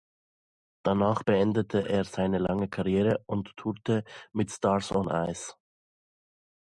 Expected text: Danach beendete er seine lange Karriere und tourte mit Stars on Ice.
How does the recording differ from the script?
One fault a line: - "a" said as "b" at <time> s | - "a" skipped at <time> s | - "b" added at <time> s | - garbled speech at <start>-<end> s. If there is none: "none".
none